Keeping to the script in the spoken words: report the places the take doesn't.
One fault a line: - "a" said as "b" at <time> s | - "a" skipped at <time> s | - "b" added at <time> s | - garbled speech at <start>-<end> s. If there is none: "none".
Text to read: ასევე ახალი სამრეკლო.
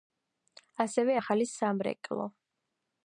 none